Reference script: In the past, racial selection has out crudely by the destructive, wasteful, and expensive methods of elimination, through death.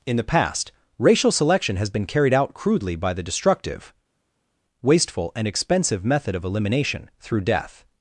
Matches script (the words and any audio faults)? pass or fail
fail